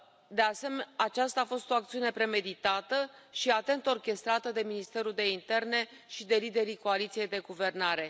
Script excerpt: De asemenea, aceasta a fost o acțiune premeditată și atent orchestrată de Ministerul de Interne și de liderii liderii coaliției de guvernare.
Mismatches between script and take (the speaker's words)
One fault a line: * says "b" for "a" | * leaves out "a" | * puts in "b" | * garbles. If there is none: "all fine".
* leaves out "liderii"